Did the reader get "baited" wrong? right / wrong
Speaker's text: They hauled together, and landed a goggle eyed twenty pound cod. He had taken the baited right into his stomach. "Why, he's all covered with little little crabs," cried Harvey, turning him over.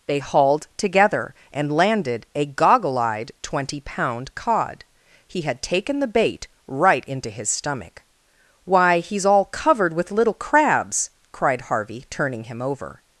wrong